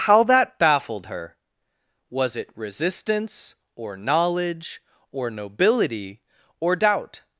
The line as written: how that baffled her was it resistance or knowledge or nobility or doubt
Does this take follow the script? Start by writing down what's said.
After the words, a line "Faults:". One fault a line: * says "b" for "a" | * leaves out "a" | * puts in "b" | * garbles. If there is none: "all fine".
how that baffled her was it resistance or knowledge or nobility or doubt
Faults:
all fine